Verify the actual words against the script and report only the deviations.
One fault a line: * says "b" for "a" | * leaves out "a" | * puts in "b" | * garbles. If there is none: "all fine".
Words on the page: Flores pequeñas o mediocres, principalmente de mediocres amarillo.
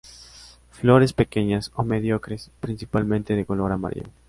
* says "color" for "mediocres"